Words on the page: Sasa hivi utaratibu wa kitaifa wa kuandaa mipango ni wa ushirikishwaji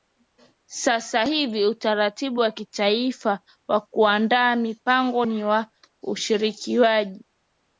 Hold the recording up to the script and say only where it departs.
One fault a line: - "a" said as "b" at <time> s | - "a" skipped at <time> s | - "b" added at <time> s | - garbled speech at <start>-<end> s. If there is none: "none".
none